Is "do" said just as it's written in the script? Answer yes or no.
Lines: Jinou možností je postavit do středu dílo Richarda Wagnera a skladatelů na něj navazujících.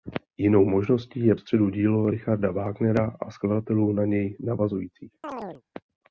no